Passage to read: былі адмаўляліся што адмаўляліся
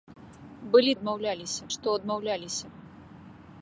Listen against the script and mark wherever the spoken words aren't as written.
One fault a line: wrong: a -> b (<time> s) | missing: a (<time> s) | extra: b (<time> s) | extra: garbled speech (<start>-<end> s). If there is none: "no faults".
no faults